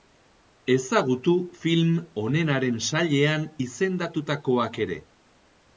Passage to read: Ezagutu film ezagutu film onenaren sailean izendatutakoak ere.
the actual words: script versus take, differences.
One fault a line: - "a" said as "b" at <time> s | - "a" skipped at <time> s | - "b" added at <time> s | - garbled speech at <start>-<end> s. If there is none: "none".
- "ezagutu film" skipped at 1.9 s